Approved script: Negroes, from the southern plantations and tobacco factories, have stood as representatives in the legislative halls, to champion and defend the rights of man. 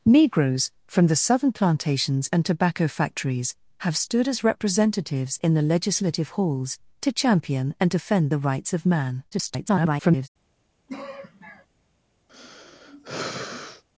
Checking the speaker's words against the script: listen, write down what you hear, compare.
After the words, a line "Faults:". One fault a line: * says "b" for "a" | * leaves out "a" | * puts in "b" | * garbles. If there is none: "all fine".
Negroes, from the southern plantations and tobacco factories, have stood as representatives in the legislative halls, to champion and defend the rights of man. [garbled]
Faults:
* garbles